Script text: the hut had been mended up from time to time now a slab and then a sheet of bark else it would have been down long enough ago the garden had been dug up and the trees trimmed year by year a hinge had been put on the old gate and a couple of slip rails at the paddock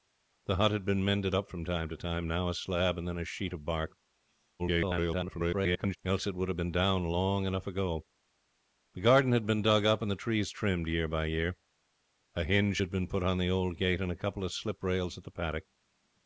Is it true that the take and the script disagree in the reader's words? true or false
true